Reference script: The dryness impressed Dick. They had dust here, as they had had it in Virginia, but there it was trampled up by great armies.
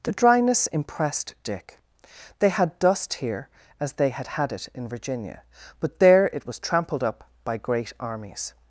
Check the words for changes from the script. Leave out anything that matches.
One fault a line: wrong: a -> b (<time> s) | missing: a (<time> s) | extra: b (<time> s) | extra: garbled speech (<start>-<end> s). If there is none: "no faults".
no faults